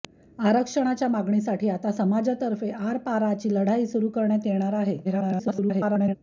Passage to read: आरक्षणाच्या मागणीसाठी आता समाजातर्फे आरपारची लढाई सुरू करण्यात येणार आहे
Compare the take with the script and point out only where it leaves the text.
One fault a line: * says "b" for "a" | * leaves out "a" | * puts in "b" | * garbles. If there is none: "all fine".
* garbles